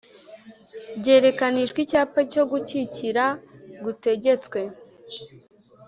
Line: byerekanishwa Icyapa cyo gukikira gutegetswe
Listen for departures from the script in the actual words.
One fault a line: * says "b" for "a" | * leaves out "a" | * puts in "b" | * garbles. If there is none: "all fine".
all fine